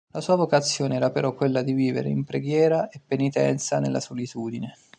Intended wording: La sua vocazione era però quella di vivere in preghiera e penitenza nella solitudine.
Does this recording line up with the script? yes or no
yes